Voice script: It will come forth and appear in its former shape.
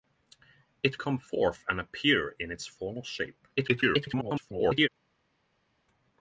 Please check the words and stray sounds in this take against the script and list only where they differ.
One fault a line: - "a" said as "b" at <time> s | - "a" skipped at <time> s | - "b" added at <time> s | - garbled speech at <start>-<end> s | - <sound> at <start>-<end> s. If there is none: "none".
- "will" skipped at 1.0 s
- garbled speech at 3.6-4.9 s